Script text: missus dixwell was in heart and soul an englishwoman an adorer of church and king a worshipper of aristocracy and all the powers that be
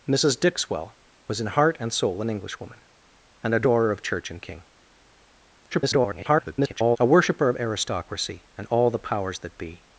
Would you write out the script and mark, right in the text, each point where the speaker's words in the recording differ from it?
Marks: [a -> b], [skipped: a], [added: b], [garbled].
missus dixwell was in heart and soul an englishwoman an adorer of church and king [garbled] a worshipper of aristocracy and all the powers that be